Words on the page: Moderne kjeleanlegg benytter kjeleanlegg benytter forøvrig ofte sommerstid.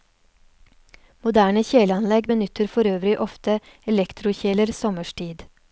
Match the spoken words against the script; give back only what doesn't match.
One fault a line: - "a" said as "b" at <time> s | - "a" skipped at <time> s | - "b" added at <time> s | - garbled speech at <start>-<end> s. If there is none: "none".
- "kjeleanlegg benytter" skipped at 2.7 s
- "elektrokjeler" added at 3.9 s